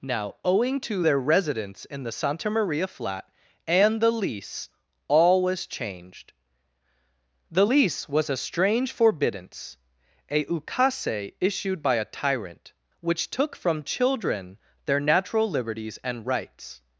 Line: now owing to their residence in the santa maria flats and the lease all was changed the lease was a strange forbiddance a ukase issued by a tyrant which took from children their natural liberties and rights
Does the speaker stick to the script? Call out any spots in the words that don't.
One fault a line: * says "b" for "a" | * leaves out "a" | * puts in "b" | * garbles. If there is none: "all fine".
* says "flat" for "flats"